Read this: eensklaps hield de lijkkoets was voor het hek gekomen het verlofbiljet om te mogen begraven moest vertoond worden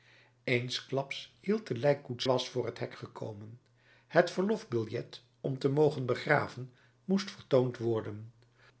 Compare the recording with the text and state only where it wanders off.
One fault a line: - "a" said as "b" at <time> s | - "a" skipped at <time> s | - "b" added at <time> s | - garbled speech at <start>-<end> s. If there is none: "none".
none